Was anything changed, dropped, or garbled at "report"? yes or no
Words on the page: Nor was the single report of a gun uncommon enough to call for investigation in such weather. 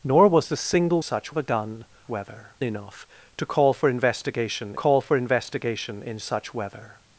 yes